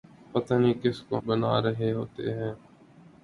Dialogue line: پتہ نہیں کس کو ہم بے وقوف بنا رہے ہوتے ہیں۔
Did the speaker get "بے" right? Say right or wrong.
wrong